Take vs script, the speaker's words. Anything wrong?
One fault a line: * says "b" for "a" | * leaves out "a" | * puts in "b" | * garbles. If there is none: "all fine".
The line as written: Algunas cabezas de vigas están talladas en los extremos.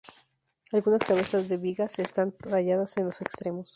all fine